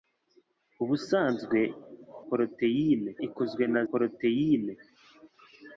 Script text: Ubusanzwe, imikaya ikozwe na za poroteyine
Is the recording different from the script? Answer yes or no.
yes